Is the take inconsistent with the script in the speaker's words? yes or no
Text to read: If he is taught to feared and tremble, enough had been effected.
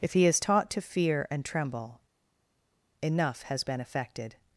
yes